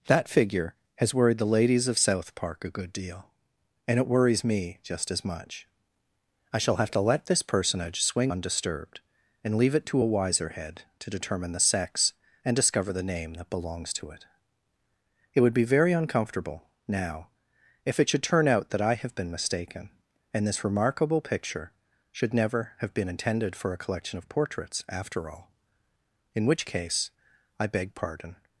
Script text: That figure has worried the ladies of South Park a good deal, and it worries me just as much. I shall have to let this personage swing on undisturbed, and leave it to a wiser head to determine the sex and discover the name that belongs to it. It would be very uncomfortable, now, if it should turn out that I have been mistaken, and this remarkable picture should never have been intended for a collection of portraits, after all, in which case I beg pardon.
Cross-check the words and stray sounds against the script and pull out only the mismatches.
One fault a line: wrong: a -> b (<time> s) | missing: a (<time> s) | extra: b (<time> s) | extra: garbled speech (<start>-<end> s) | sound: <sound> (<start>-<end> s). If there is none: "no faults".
missing: on (8.3 s)